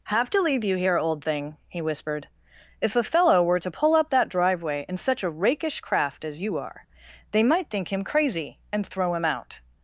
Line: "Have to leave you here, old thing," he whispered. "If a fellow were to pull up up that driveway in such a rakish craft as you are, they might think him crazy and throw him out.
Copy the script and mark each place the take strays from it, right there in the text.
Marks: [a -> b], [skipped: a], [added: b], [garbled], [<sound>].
"Have to leave you here, old thing," he whispered. "If a fellow were to pull up [skipped: up] that driveway in such a rakish craft as you are, they might think him crazy and throw him out.